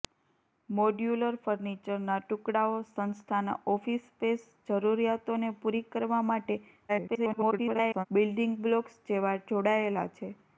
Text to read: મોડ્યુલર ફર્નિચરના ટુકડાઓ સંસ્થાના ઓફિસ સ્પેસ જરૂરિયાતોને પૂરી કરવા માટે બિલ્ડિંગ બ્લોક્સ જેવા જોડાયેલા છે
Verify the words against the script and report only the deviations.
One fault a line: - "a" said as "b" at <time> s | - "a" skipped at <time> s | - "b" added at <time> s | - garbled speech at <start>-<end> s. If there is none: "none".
- garbled speech at 6.9-8.1 s